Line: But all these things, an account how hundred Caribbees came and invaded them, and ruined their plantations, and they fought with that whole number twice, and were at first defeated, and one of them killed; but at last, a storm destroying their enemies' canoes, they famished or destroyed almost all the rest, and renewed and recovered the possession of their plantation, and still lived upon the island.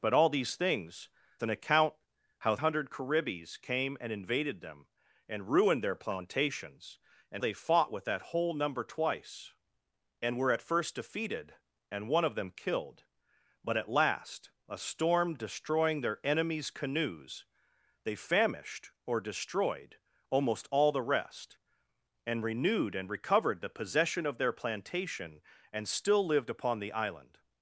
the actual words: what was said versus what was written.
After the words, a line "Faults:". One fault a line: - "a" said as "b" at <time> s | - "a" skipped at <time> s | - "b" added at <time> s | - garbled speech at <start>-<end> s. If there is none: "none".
But all these things, an account how hundred Caribbees came and invaded them, and ruined their plantations, and they fought with that whole number twice, and were at first defeated, and one of them killed; but at last, a storm destroying their enemies' canoes, they famished or destroyed almost all the rest, and renewed and recovered the possession of their plantation, and still lived upon the island.
Faults:
none